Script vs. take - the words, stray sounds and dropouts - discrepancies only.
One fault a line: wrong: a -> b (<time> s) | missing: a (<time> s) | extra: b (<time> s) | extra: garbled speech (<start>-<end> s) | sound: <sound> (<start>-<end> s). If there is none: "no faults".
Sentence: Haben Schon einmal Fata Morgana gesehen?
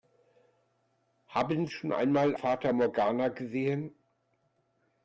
no faults